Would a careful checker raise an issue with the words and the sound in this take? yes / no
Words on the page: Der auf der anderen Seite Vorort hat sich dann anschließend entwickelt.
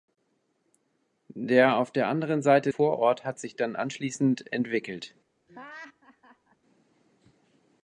yes